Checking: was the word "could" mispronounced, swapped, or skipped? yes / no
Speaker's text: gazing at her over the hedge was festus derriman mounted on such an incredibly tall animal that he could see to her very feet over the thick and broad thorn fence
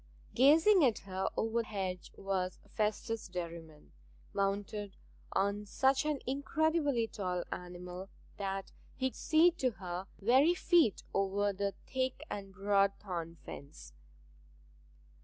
yes